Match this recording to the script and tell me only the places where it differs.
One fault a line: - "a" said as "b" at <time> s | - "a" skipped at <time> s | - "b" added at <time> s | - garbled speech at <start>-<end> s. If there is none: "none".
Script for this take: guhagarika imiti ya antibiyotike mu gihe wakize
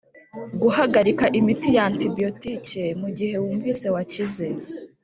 - "wumvise" added at 3.4 s